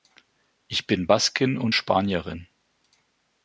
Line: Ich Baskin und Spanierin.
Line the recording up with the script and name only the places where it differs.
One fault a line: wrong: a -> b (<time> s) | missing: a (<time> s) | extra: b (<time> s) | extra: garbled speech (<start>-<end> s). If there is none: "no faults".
extra: bin (0.9 s)